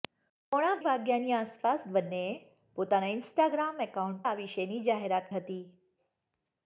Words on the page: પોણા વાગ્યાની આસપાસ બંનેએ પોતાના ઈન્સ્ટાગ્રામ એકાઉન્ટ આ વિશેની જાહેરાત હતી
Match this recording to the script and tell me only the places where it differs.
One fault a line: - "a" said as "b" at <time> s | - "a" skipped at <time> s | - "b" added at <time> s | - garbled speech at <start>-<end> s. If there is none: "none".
none